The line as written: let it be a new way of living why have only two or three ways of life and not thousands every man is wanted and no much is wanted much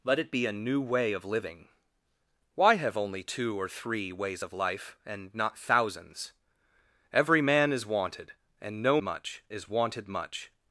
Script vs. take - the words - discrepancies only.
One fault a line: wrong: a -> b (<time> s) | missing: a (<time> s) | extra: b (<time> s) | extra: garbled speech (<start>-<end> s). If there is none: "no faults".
no faults